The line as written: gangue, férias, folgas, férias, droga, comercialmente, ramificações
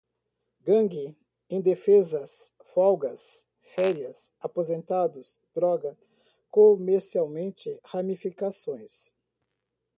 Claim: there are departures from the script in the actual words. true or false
true